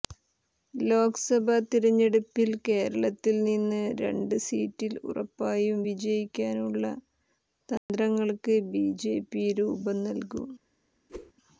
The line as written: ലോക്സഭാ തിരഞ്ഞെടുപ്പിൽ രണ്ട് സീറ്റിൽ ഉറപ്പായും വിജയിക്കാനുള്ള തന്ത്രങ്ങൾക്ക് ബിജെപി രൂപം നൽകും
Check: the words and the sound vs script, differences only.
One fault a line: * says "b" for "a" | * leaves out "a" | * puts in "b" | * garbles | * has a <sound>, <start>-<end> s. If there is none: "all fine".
* puts in "കേരളത്തിൽ നിന്ന്"
* has a dropout, 7.8-7.9 s
* has a whoosh, 11.1-11.3 s